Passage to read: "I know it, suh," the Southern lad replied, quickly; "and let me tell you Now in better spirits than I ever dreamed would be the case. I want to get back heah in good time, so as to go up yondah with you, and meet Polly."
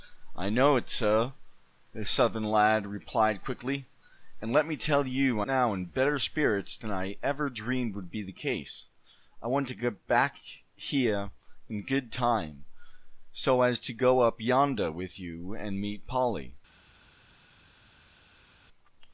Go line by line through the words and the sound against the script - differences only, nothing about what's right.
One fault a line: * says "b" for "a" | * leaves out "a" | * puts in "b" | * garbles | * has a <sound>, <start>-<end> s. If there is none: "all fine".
all fine